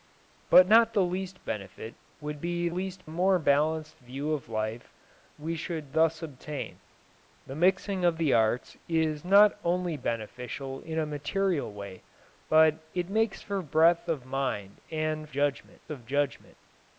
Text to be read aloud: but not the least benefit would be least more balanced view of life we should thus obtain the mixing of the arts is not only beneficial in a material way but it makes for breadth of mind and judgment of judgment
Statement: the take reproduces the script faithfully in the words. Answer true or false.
true